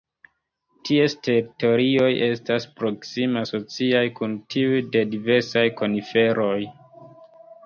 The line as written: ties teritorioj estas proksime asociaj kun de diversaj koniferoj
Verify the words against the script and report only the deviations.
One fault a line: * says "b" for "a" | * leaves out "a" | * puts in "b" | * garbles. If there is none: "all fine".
* puts in "tiuj"